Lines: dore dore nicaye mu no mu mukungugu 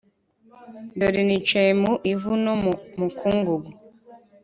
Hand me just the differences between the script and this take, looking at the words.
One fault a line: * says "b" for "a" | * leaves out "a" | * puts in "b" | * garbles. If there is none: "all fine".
* leaves out "dore"
* puts in "ivu"